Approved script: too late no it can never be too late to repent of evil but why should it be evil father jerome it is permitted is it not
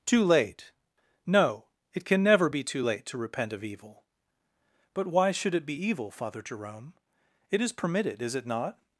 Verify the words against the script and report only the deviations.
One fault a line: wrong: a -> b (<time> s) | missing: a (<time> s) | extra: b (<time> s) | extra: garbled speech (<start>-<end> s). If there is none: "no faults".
no faults